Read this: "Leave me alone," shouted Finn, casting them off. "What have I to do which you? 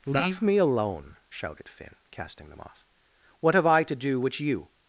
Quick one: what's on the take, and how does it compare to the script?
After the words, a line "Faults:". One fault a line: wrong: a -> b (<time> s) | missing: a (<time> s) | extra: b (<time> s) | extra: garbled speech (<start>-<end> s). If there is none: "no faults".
"Leave me alone," shouted Finn, casting them off. "What have I to do which you?
Faults:
no faults